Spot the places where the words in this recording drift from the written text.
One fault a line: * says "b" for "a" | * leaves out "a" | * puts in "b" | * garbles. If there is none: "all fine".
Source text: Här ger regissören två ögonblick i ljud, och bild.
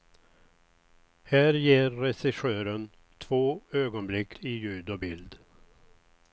all fine